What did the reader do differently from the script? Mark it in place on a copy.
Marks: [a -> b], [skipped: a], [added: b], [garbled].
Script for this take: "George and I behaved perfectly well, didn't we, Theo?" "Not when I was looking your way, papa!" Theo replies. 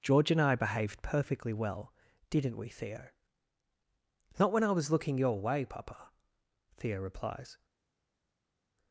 "George and I behaved perfectly well, didn't we, Theo?" "Not when I was looking your way, papa!" Theo replies.